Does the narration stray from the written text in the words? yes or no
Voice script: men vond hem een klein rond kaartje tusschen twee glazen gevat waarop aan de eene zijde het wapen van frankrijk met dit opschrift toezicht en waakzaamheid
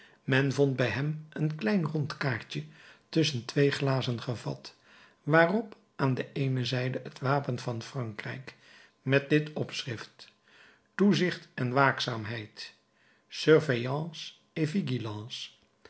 yes